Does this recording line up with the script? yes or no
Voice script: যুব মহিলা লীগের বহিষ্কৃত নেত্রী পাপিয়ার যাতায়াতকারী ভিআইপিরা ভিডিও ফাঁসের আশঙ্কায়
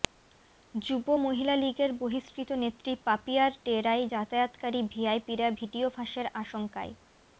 no